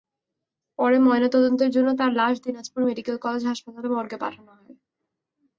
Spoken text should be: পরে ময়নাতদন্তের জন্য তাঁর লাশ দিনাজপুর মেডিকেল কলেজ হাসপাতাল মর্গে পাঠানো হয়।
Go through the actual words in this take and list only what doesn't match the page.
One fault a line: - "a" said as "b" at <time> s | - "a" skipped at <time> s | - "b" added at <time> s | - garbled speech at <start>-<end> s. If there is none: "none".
none